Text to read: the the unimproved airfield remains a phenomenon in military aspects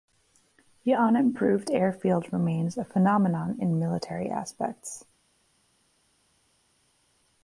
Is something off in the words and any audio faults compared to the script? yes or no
yes